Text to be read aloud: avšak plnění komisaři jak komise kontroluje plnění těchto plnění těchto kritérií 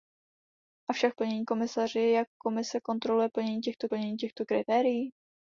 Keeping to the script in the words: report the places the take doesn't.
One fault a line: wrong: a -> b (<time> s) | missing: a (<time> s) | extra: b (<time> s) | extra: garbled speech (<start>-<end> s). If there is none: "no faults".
no faults